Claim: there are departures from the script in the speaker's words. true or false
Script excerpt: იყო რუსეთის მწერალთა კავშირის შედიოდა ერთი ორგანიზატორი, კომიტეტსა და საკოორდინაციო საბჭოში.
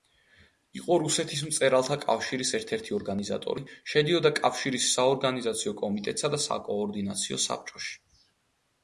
true